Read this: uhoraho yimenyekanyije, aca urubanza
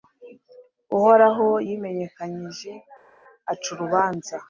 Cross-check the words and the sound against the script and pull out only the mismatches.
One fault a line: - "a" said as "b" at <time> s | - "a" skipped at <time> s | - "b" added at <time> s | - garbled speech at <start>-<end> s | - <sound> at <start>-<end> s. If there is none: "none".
none